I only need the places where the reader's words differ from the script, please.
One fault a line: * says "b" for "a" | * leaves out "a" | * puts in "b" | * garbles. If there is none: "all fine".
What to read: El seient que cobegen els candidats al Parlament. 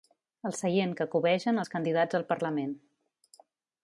all fine